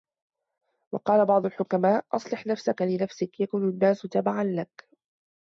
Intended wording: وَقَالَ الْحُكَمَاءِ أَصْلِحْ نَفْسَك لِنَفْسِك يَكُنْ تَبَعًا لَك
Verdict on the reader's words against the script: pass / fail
fail